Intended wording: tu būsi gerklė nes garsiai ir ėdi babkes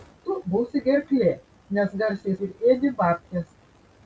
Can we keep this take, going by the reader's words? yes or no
yes